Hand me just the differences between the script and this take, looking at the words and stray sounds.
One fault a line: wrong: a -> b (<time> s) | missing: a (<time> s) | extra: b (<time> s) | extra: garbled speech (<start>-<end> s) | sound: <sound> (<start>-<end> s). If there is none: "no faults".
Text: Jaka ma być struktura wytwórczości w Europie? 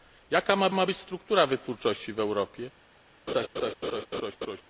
extra: ma (0.7 s)
sound: laugh (3.3-4.6 s)